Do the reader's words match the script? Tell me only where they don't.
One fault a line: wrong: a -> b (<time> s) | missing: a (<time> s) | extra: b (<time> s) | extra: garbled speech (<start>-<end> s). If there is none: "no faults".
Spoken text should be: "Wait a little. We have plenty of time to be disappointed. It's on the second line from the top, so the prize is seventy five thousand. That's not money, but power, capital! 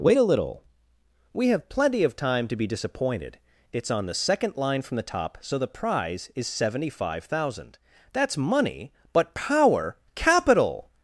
missing: not (8.4 s)